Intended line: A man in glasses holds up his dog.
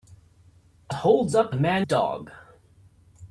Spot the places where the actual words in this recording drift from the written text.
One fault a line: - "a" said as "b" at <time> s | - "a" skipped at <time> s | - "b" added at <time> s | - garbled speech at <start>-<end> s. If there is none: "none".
- "man in glasses" skipped at 0.9 s
- "his" said as "man" at 1.5 s